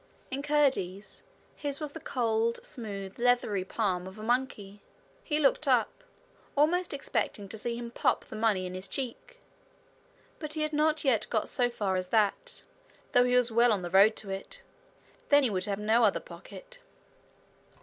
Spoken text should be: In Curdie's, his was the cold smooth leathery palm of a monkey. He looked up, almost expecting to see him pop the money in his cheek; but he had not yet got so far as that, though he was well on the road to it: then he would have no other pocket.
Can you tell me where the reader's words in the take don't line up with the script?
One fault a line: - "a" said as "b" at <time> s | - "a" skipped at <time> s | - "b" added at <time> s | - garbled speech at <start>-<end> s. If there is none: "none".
none